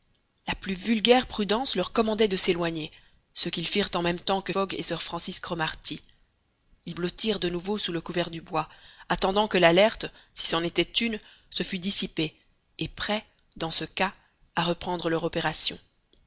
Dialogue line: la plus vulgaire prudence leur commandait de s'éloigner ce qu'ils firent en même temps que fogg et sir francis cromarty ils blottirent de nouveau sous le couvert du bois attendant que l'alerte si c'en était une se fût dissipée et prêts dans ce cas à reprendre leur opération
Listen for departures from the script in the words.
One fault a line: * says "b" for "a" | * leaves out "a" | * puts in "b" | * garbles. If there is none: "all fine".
all fine